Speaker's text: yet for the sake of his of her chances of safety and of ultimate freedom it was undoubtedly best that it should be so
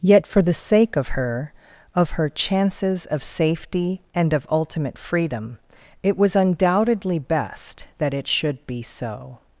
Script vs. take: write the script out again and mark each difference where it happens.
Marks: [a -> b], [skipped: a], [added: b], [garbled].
yet for the sake of [his -> her] of her chances of safety and of ultimate freedom it was undoubtedly best that it should be so